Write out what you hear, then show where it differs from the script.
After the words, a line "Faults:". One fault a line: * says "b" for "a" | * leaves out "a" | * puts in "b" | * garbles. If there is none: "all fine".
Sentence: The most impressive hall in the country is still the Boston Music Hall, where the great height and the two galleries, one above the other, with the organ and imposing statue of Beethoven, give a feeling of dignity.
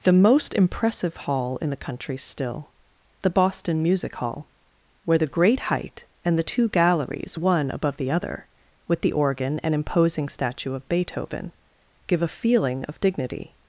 The most impressive hall in the country still the Boston Music Hall, where the great height and the two galleries, one above the other, with the organ and imposing statue of Beethoven, give a feeling of dignity.
Faults:
* leaves out "is"